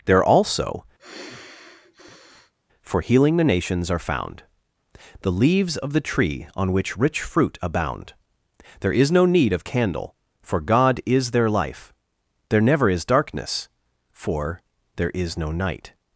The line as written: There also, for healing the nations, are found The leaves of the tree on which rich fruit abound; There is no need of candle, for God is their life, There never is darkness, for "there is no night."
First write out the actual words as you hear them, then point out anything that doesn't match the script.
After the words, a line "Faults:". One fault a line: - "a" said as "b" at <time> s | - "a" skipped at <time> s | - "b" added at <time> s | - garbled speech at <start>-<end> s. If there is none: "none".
There also, for healing the nations, are found The leaves of the tree on which rich fruit abound; There is no need of candle, for God is their life, There never is darkness, for "there is no night."
Faults:
none